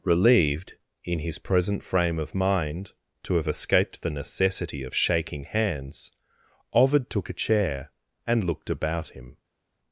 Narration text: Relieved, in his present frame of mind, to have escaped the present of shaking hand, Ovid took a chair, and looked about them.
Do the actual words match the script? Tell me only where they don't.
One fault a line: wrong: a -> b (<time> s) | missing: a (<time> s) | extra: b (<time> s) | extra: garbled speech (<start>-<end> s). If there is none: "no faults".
wrong: present -> necessity (4.1 s)
wrong: hand -> hands (5.4 s)
wrong: them -> him (9.1 s)